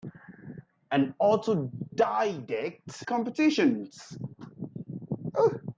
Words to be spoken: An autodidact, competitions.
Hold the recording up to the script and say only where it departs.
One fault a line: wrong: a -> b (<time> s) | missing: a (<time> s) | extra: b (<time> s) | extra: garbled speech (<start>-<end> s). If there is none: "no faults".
no faults